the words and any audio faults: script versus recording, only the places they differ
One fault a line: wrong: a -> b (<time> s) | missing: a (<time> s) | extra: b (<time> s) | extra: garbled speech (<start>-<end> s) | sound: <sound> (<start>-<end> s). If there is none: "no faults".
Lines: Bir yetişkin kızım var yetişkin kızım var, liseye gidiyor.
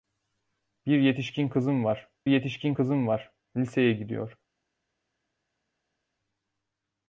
no faults